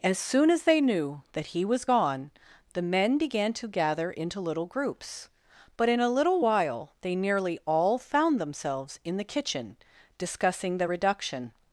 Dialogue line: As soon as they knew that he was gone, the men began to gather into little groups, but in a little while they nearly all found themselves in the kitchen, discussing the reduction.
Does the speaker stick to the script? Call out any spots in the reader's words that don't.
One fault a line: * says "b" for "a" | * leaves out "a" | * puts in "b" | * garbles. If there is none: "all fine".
all fine